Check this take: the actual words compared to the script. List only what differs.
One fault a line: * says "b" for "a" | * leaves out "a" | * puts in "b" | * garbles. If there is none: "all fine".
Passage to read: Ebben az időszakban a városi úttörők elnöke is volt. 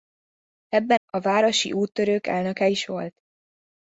* leaves out "az időszakban"